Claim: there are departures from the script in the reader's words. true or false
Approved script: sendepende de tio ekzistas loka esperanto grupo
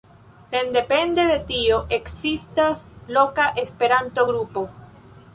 false